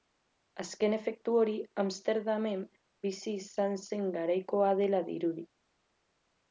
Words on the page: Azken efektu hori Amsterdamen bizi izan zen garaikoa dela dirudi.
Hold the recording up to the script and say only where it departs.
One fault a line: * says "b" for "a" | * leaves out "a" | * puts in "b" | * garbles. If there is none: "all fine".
all fine